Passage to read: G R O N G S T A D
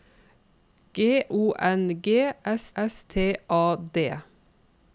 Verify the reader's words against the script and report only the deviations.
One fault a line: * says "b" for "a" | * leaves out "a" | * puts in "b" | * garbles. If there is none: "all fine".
* leaves out "R"
* puts in "S"